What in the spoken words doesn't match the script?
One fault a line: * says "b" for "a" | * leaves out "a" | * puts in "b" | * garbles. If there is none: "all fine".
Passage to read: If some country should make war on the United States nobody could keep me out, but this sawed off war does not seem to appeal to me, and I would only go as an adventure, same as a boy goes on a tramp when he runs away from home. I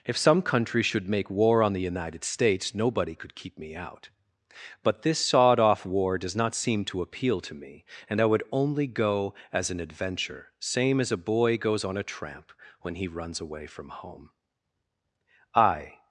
all fine